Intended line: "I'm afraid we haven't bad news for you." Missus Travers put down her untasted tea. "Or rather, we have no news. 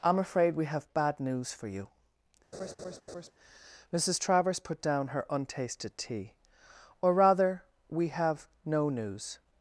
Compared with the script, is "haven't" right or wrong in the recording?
wrong